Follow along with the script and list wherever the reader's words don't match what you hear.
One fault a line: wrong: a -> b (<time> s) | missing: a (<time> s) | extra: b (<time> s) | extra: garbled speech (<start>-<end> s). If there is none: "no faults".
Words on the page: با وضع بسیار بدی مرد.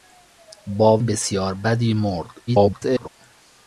missing: وضع (1.0 s)
extra: garbled speech (2.5-3.1 s)